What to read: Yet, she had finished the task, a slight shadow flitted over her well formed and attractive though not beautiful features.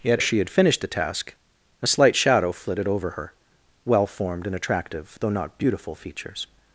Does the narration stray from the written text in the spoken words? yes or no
no